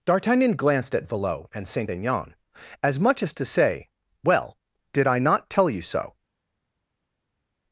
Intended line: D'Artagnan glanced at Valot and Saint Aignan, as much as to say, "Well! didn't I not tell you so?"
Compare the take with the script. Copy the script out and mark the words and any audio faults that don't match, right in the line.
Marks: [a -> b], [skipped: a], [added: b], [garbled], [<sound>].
D'Artagnan glanced at Valot and Saint Aignan, as much as to say, "Well! [didn't -> did] I not tell you so?"